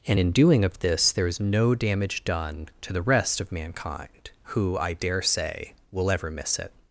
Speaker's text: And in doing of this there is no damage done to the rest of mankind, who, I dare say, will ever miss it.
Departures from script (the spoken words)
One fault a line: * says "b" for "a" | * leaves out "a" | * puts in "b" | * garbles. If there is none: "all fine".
all fine